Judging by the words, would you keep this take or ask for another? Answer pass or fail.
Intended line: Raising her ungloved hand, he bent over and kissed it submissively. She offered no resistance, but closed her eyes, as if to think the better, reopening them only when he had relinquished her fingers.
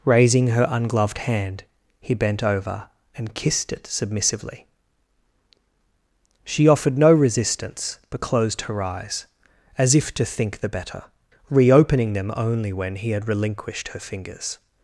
pass